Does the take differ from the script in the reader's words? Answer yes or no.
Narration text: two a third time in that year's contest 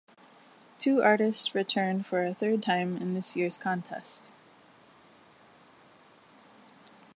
yes